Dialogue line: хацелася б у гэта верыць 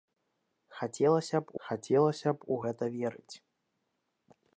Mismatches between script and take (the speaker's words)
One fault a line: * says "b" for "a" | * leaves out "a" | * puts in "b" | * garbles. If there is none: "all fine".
* puts in "хацелася б"